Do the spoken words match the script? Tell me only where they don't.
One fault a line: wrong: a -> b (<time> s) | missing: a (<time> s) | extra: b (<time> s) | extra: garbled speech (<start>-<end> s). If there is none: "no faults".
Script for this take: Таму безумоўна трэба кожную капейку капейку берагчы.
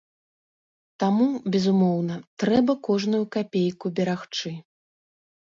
missing: капейку (3.9 s)